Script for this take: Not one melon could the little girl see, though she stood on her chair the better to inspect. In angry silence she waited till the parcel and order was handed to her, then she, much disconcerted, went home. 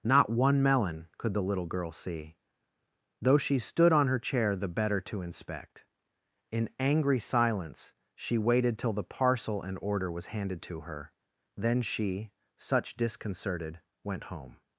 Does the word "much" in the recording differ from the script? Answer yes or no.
yes